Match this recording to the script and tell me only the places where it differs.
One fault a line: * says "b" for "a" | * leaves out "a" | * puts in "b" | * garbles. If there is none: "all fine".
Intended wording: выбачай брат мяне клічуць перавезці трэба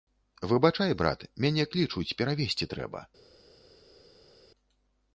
all fine